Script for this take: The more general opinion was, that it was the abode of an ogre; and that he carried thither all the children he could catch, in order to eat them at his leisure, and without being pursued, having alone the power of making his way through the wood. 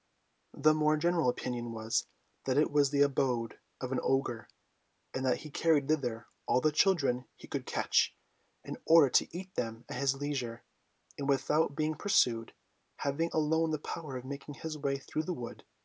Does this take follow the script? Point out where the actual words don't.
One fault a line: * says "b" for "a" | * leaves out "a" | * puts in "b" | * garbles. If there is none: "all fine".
all fine